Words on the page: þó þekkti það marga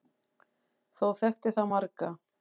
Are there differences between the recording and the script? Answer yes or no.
no